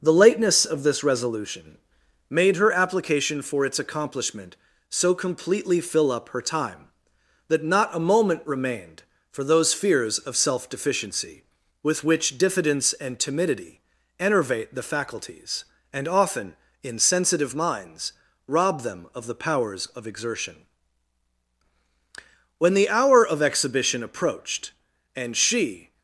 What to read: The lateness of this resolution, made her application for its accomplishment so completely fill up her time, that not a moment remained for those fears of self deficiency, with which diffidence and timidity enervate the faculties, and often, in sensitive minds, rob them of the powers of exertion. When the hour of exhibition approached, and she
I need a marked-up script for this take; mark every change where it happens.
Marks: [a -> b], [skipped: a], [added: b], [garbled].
The lateness of this resolution, made her application for its accomplishment so completely fill up her time, that not a moment remained for those fears of self deficiency, with which diffidence and timidity enervate the faculties, and often, in sensitive minds, rob them of the powers of exertion. When the hour of exhibition approached, and she